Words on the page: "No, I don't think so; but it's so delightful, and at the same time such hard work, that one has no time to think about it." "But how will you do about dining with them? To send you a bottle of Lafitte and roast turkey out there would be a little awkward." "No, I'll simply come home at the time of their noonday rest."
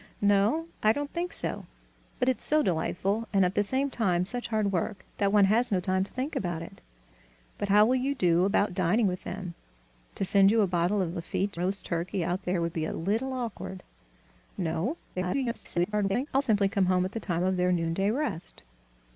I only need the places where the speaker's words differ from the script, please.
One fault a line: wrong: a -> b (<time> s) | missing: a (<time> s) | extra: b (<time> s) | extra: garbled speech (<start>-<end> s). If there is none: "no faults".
missing: and (11.6 s)
extra: garbled speech (15.1-16.3 s)